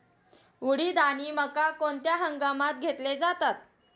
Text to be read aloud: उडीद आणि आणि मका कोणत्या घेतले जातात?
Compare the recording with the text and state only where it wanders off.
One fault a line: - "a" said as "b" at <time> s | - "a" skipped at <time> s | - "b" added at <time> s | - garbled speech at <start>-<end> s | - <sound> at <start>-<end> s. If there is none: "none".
- "आणि" skipped at 1.3 s
- "हंगामात" added at 2.1 s